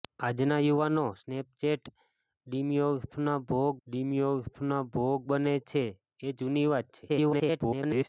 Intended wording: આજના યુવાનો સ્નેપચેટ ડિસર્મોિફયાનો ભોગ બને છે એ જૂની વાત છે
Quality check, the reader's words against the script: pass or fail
fail